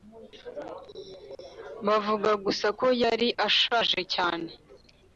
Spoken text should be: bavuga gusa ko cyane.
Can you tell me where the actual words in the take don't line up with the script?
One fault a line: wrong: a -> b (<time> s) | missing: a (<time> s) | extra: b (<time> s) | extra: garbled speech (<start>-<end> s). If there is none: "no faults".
extra: yari ashaje (3.0 s)